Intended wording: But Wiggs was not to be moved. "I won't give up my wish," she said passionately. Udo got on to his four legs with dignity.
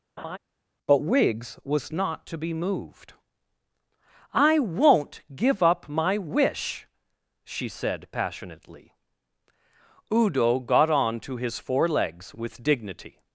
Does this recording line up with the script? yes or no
yes